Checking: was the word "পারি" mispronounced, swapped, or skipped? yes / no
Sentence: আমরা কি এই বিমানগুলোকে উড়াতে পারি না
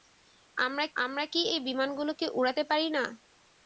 no